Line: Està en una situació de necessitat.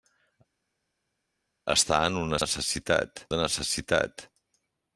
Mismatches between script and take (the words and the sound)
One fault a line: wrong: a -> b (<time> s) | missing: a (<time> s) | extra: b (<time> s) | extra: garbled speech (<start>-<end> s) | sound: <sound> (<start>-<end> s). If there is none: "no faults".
wrong: situació -> necessitat (2.4 s)